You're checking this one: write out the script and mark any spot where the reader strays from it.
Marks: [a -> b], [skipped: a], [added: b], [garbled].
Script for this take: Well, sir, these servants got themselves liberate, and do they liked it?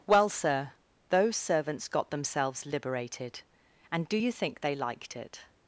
Well, sir, [these -> those] servants got themselves [liberate, -> liberated] and do [added: you think] they liked it?